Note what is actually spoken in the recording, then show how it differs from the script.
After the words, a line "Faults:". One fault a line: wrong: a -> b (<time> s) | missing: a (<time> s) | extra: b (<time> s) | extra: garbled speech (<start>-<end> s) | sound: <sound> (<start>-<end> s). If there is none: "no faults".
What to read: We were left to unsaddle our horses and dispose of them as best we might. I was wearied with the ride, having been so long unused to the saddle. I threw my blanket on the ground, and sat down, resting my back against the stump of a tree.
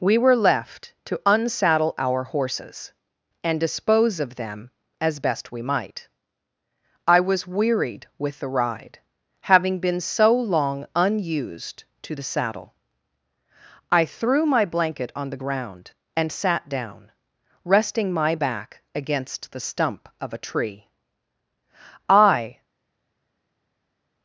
We were left to unsaddle our horses and dispose of them as best we might. I was wearied with the ride, having been so long unused to the saddle. I threw my blanket on the ground, and sat down, resting my back against the stump of a tree. I
Faults:
extra: I (22.1 s)